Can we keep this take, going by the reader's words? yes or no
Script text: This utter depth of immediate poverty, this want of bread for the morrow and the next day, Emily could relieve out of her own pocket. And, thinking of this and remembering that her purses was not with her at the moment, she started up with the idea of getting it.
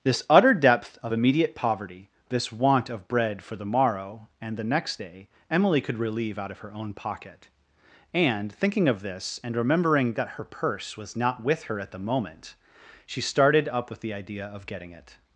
no